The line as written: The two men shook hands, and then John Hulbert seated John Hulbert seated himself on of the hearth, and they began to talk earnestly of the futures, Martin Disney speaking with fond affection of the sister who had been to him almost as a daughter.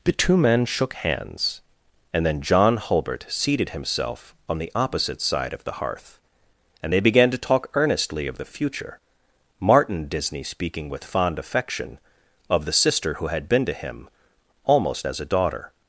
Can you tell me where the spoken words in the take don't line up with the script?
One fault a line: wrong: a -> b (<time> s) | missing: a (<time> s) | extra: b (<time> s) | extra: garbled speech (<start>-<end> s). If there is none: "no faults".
wrong: John Hulbert seated himself on -> himself on the opposite side (3.7 s)
wrong: futures -> future (8.5 s)